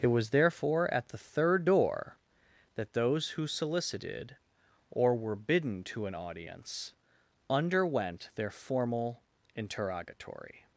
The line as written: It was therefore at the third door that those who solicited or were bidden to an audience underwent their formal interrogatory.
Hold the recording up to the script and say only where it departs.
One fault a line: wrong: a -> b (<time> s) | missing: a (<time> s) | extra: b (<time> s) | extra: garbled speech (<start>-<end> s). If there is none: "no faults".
no faults